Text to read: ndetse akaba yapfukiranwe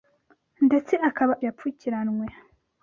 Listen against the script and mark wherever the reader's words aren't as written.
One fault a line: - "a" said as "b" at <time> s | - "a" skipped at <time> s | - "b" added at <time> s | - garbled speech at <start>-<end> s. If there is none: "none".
none